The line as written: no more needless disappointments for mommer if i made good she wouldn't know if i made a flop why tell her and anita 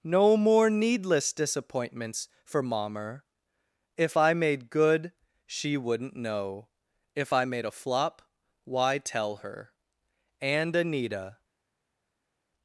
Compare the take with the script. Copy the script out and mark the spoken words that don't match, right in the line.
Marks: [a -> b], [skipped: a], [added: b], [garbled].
no more needless disappointments for mommer if i made good she wouldn't know if i made a flop why tell her and anita